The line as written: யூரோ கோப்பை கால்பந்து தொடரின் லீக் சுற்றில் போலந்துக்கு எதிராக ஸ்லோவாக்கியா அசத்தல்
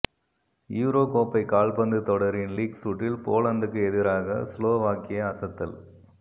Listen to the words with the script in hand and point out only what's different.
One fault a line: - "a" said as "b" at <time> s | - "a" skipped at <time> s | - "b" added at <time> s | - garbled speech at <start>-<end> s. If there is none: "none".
none